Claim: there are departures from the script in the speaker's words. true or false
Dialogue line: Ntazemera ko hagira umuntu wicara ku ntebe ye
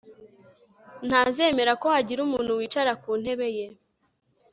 false